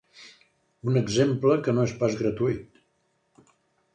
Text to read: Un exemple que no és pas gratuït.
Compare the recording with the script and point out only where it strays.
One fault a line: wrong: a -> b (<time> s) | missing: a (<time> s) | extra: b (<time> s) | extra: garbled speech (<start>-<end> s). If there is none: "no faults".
no faults